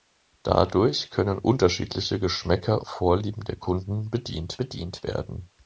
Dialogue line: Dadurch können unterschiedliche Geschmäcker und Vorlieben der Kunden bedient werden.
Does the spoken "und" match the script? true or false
false